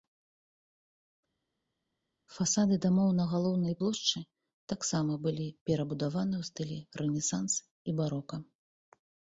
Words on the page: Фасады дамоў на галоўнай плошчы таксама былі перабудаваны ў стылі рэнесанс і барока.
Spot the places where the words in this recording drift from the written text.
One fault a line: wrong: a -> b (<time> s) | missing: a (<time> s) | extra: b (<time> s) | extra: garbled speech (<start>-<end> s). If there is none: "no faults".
no faults